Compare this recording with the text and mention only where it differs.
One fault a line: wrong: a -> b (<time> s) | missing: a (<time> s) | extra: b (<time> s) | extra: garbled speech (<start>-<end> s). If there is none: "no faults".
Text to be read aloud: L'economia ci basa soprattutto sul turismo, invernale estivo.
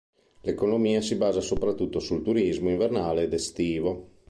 wrong: ci -> si (1.0 s)
extra: ed (3.2 s)